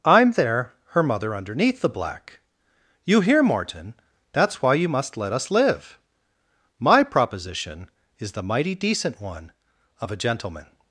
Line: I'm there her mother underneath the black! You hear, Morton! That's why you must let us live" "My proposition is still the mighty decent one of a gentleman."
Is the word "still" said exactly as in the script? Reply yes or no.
no